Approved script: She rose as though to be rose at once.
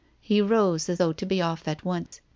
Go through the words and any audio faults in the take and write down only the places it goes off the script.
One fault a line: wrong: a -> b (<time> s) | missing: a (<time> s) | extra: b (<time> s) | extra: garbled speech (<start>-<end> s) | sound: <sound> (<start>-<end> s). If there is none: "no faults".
wrong: She -> He (0.2 s)
wrong: rose -> off (1.4 s)
sound: dropout (2.1-2.1 s)